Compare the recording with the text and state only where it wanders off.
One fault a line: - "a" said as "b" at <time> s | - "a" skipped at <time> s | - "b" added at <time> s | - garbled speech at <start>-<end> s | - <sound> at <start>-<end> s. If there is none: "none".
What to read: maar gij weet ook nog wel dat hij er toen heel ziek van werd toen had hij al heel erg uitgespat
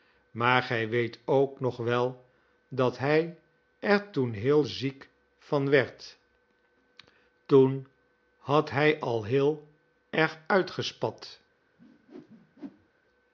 - whoosh at 11.8-12.9 s